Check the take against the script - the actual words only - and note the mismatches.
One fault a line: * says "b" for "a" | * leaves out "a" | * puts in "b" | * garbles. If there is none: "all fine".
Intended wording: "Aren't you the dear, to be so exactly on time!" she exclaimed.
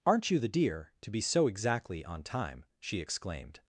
all fine